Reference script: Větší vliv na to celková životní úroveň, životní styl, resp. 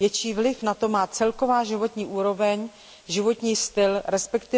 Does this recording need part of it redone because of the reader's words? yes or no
yes